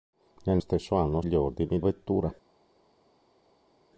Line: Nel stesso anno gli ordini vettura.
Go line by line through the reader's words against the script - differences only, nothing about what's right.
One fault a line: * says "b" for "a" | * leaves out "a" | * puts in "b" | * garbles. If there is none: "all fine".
all fine